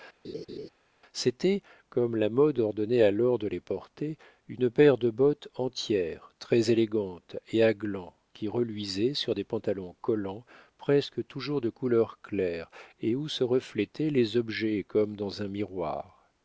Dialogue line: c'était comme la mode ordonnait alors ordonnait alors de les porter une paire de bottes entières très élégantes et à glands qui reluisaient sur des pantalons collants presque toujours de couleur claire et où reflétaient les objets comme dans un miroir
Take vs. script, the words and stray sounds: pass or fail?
fail